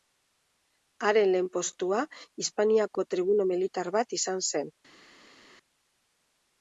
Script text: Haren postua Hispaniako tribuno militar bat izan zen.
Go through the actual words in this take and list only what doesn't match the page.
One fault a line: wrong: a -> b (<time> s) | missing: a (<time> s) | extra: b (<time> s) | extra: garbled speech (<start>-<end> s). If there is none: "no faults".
extra: lehen (1.4 s)